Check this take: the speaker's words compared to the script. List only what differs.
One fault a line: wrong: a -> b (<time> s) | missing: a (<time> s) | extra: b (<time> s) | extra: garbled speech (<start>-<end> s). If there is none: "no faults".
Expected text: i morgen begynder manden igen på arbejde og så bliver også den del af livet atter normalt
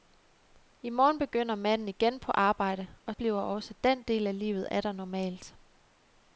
missing: så (3.1 s)